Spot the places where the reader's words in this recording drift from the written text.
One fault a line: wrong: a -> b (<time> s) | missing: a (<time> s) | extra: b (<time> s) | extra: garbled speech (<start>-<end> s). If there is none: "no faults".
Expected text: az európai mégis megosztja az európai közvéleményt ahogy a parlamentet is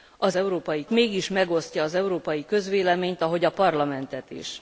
no faults